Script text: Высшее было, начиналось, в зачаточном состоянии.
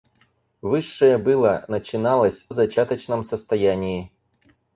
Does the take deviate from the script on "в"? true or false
false